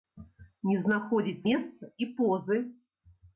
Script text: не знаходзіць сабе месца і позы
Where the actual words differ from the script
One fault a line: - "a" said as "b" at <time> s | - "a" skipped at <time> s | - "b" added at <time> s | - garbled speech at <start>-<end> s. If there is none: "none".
- "сабе" skipped at 1.4 s